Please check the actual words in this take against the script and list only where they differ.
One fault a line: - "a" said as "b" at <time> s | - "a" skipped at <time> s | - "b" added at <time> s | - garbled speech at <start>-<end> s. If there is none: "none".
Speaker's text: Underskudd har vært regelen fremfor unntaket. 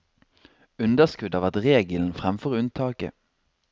none